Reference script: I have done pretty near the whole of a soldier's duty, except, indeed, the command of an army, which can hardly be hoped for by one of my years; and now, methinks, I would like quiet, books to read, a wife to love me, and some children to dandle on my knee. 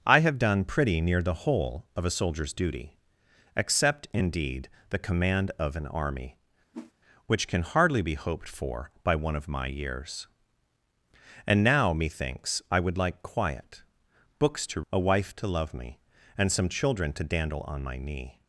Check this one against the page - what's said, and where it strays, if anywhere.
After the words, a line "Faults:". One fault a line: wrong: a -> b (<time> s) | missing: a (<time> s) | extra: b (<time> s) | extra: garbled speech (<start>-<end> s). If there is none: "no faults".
I have done pretty near the whole of a soldier's duty, except, indeed, the command of an army, which can hardly be hoped for by one of my years; and now, methinks, I would like quiet, books to a wife to love me, and some children to dandle on my knee.
Faults:
missing: read (14.8 s)